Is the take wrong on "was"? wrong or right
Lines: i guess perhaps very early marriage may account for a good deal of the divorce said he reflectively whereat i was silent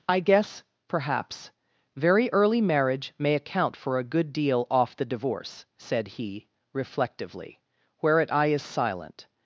wrong